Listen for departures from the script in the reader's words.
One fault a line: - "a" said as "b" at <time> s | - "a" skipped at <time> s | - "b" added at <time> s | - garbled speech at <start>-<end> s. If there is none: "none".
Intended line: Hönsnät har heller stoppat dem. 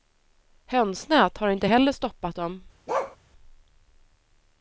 - "inte" added at 1.5 s